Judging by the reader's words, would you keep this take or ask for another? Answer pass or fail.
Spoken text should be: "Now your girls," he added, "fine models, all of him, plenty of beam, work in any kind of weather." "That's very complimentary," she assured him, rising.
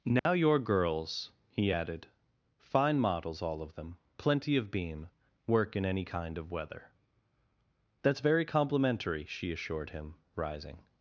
fail